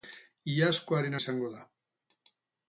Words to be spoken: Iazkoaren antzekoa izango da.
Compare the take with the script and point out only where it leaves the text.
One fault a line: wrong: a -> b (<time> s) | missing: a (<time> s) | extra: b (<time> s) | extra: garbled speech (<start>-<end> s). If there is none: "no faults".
missing: antzekoa (1.2 s)